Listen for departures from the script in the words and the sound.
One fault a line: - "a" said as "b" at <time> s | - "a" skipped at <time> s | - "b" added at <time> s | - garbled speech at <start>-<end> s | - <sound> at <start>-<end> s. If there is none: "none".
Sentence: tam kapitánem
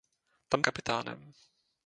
none